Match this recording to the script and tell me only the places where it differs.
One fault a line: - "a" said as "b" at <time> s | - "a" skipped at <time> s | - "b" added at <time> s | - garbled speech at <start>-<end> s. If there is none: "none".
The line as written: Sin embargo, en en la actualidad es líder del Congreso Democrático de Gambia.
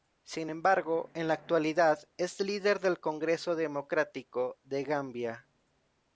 - "en" skipped at 1.3 s